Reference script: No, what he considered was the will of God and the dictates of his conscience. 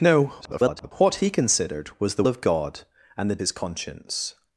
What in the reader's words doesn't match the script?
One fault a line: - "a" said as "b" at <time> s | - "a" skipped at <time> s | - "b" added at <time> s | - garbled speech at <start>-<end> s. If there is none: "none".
- garbled speech at 0.4-0.9 s
- "will" skipped at 2.2 s
- "dictates of" skipped at 3.4 s